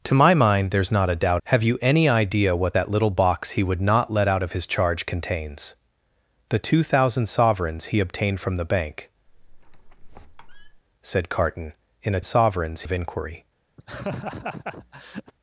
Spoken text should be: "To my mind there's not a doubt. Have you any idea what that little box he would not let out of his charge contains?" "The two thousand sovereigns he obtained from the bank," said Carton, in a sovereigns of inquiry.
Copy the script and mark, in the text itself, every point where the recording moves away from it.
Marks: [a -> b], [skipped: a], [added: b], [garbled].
"To my mind there's not a doubt. Have you any idea what that little box he would not let out of his charge contains?" "The two thousand sovereigns he obtained from the bank," said Carton, in a sovereigns of inquiry.